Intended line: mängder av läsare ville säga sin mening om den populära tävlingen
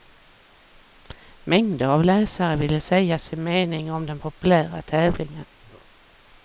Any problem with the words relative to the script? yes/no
no